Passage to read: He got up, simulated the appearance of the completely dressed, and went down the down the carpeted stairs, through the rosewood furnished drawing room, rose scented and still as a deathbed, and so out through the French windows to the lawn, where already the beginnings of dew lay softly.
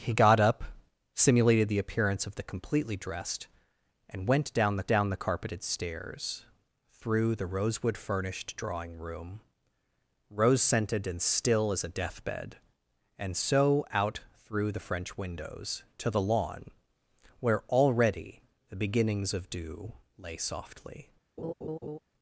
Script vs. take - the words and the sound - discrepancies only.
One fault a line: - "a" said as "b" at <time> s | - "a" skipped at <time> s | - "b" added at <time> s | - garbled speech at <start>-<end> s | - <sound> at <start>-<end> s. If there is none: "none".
- laugh at 21.4-22.0 s